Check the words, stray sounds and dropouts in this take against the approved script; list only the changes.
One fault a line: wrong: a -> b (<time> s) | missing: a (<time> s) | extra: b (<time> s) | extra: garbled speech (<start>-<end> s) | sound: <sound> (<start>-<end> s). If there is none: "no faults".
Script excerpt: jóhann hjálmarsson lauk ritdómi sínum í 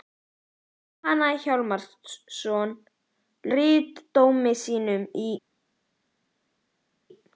missing: lauk (2.7 s)